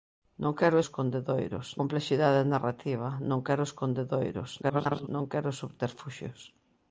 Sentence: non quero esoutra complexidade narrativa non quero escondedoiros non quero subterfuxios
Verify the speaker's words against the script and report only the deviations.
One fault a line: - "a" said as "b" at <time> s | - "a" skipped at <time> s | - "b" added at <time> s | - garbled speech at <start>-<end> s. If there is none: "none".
- "esoutra" said as "escondedoiros" at 0.8 s
- garbled speech at 4.6-5.1 s